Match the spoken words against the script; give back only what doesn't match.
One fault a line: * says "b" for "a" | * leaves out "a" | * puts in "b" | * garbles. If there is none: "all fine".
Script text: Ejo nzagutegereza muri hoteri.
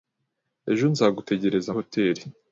* leaves out "muri"